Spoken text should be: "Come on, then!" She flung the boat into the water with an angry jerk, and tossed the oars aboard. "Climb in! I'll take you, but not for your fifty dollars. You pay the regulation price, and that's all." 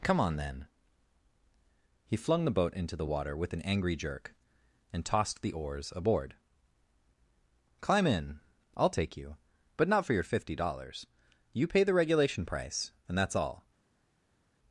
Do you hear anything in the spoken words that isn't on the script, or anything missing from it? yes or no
yes